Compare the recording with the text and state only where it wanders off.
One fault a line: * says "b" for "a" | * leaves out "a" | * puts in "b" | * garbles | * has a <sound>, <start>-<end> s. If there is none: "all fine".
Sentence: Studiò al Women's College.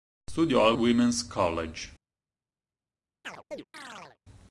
* has a chirp, 3.2-4.2 s